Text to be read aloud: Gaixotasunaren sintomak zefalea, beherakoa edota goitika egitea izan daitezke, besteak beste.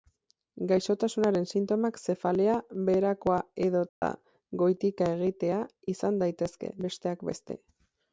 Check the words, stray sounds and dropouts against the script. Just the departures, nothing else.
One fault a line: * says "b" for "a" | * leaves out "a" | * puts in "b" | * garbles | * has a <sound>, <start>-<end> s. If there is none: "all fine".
* has a dropout, 3.9-4.0 s